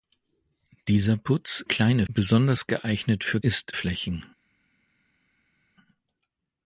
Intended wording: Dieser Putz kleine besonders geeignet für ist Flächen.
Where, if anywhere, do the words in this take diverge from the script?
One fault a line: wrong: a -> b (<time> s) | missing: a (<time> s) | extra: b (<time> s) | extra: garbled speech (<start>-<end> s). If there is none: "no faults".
no faults